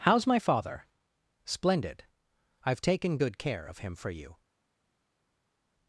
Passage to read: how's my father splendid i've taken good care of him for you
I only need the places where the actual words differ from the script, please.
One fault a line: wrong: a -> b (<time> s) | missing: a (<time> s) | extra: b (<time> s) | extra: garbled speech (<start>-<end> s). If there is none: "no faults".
no faults